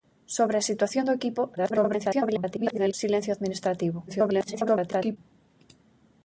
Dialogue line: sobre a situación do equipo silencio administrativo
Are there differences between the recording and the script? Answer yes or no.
yes